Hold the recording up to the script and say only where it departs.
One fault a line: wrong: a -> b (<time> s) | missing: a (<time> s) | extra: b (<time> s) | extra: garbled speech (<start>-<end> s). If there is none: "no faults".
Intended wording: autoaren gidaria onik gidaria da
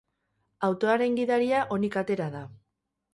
wrong: gidaria -> atera (2.0 s)